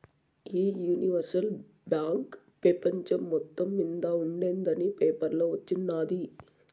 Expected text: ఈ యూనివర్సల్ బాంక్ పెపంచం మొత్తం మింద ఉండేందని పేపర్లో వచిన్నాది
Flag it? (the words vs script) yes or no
no